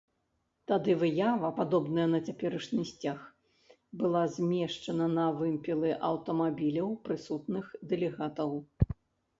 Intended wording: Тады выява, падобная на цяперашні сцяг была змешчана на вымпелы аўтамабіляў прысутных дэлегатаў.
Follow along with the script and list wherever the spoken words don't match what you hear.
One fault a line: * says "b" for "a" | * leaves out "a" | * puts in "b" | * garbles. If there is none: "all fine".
all fine